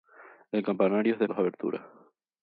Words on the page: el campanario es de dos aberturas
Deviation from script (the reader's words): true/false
false